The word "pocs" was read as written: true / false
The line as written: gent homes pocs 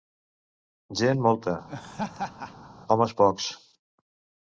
true